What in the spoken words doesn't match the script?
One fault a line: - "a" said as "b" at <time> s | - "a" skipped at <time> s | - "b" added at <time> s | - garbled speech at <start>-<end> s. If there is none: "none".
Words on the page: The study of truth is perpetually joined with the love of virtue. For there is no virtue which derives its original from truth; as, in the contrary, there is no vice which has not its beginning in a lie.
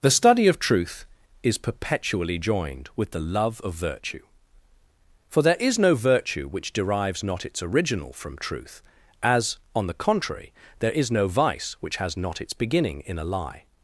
- "not" added at 7.2 s
- "in" said as "on" at 9.8 s